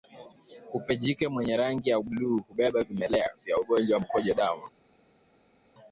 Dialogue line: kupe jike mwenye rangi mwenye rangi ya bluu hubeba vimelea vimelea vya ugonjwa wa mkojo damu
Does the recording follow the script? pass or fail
fail